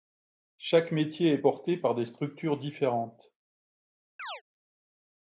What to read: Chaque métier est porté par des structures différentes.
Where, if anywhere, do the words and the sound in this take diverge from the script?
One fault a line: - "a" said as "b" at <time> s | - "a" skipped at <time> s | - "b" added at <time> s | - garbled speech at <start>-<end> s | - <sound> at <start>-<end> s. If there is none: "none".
- chirp at 4.2-4.4 s